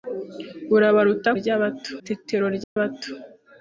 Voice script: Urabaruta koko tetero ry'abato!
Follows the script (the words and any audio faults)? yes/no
no